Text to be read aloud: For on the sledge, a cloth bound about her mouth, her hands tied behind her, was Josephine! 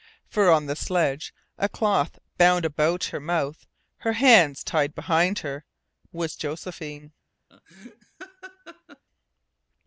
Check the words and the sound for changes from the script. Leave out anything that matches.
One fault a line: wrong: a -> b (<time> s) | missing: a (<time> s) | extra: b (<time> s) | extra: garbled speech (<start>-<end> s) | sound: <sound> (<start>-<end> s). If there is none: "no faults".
sound: laugh (7.5-9.0 s)